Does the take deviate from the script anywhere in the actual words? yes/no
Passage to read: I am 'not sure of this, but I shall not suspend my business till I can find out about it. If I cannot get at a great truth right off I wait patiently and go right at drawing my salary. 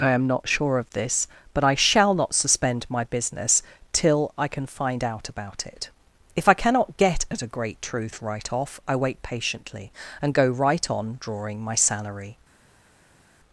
yes